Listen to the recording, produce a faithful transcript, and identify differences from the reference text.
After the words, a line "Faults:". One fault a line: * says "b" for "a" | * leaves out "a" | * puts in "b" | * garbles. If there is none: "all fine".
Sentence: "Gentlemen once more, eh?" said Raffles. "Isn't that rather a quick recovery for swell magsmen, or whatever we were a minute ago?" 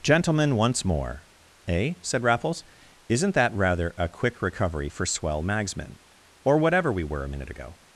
"Gentlemen once more, eh?" said Raffles. "Isn't that rather a quick recovery for swell magsmen, or whatever we were a minute ago?"
Faults:
all fine